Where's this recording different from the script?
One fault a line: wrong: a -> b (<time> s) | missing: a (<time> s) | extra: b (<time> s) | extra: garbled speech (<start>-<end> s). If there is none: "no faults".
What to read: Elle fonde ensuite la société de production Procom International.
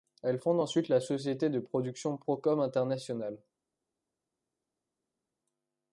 no faults